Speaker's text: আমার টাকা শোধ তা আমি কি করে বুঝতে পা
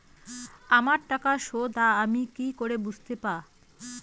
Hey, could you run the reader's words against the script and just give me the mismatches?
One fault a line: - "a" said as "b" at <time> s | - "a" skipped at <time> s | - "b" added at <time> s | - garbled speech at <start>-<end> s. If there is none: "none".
none